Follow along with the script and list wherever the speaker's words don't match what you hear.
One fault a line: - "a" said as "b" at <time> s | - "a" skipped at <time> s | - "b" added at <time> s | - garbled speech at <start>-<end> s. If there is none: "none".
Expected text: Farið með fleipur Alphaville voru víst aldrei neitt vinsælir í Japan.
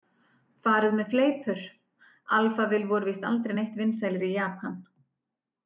none